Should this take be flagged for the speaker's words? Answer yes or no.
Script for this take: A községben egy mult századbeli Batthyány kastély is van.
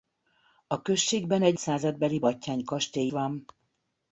yes